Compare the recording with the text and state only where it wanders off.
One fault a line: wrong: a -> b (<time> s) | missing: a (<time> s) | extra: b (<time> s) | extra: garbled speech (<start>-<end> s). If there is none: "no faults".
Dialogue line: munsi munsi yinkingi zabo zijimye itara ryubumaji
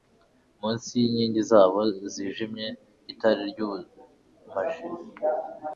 missing: munsi (0.9 s)